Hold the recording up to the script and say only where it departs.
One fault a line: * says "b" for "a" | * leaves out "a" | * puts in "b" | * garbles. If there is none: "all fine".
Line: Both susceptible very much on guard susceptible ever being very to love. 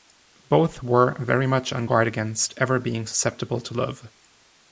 * says "were" for "susceptible"
* says "against" for "susceptible"
* says "susceptible" for "very"